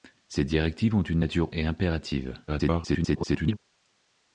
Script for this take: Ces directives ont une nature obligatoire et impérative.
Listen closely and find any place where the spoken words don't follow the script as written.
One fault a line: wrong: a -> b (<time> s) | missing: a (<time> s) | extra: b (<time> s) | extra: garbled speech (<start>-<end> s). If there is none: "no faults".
missing: obligatoire (1.5 s)
extra: garbled speech (2.5-3.6 s)